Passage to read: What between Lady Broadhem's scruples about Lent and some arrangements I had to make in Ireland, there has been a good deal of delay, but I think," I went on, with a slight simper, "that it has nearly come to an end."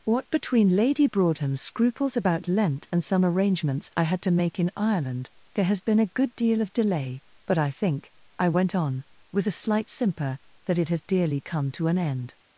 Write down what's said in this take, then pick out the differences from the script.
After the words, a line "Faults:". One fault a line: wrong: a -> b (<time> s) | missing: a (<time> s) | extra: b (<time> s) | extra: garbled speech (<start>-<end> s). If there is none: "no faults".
What between Lady Broadhem's scruples about Lent and some arrangements I had to make in Ireland, there has been a good deal of delay, but I think," I went on, with a slight simper, "that it has dearly come to an end."
Faults:
wrong: nearly -> dearly (11.0 s)